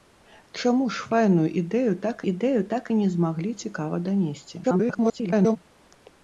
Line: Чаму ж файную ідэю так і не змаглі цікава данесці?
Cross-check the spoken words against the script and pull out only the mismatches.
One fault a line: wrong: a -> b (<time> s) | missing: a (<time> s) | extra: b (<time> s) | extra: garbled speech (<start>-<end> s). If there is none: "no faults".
extra: ідэю так (2.3 s)
extra: garbled speech (4.6-5.6 s)